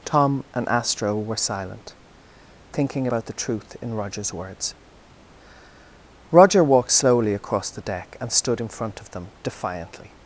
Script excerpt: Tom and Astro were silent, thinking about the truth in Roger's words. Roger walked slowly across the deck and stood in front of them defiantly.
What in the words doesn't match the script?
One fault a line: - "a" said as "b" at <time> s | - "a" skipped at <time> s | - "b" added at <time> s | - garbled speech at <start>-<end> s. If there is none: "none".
none